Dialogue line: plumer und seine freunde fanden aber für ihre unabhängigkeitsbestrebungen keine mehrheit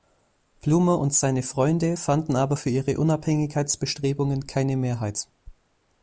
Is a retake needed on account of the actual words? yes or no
no